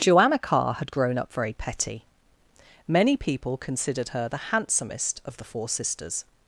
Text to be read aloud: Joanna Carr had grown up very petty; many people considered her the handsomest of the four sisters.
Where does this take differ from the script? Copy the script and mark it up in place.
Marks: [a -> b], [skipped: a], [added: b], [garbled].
Joanna Carr had grown up very petty; many people considered her the handsomest of the four sisters.